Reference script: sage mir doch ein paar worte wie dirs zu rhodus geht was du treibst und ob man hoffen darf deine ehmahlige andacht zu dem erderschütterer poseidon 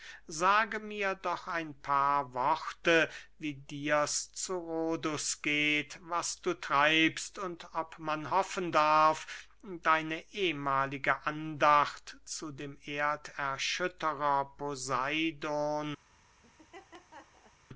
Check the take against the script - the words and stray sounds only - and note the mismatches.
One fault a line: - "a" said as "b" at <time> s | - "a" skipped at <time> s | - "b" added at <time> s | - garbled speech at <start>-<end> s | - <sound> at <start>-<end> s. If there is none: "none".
- laugh at 16.4-17.6 s